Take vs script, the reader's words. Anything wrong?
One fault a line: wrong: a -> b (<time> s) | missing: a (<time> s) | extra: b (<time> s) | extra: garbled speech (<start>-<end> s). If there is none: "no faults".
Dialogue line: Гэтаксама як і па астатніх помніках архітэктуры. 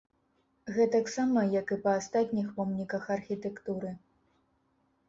no faults